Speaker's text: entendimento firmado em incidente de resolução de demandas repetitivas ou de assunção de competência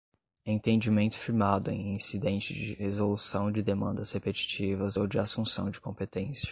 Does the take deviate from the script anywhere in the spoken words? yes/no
no